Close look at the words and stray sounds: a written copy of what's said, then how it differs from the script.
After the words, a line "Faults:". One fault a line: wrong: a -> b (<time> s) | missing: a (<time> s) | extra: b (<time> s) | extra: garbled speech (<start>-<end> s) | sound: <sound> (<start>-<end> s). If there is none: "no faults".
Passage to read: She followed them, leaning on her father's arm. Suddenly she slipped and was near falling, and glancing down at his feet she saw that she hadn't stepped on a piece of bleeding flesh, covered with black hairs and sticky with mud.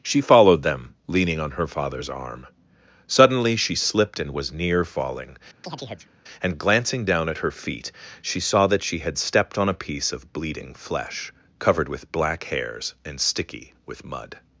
She followed them, leaning on her father's arm. Suddenly she slipped and was near falling, and glancing down at her feet she saw that she had stepped on a piece of bleeding flesh, covered with black hairs and sticky with mud.
Faults:
sound: chirp (5.6-6.1 s)
wrong: his -> her (7.4 s)
wrong: hadn't -> had (9.0 s)